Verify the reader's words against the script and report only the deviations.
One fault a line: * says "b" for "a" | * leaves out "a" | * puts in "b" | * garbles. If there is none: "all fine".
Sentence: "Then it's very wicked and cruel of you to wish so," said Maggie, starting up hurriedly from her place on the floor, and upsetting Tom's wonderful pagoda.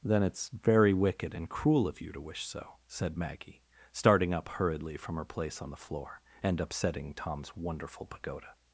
all fine